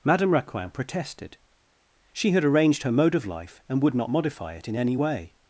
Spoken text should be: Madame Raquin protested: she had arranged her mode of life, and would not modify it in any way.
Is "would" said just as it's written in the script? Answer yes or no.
yes